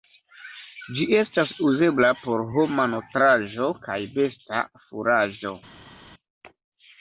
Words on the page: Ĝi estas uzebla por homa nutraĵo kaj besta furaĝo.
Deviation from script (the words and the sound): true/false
false